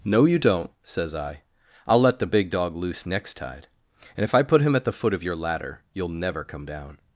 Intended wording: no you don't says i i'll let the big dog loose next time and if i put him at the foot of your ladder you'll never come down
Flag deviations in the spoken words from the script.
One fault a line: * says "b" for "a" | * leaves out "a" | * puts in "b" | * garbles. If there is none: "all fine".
* says "tide" for "time"